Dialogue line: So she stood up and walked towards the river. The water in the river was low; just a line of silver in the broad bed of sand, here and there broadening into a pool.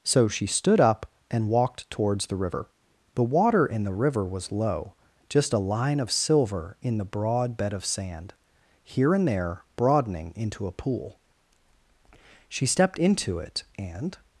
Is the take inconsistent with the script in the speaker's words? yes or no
yes